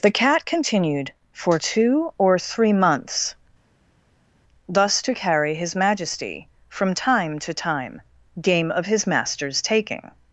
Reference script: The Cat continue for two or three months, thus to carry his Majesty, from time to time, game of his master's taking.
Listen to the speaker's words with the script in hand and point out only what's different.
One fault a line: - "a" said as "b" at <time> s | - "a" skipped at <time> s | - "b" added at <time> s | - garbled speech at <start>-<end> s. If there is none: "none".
- "continue" said as "continued" at 0.5 s